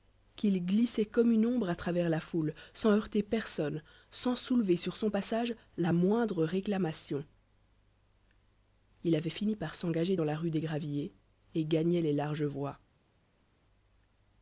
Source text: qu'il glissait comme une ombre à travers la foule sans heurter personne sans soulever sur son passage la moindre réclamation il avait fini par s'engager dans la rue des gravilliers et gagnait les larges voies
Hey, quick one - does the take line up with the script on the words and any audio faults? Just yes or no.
yes